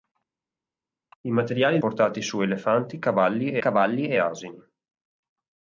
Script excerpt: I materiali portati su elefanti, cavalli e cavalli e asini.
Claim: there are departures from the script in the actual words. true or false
false